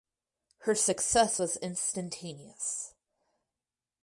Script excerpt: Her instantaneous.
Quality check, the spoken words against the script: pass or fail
fail